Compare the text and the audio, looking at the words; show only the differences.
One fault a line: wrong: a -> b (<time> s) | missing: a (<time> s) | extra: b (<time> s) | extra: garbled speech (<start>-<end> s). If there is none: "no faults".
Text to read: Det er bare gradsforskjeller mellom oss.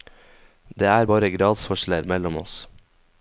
no faults